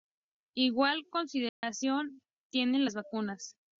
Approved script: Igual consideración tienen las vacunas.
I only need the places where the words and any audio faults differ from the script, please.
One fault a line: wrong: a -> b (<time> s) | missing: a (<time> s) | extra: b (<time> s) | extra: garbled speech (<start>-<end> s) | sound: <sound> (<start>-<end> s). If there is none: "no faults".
sound: dropout (1.5-1.6 s)